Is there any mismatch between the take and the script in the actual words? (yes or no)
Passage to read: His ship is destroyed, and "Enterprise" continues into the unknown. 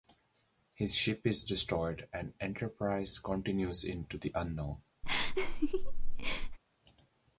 no